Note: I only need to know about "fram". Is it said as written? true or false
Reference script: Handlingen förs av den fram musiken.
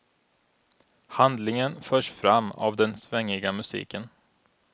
false